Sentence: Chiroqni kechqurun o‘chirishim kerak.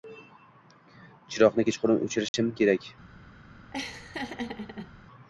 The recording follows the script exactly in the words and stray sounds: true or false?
false